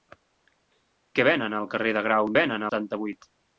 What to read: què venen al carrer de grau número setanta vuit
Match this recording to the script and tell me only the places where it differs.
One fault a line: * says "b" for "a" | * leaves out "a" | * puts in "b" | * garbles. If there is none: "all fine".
* says "venen" for "número"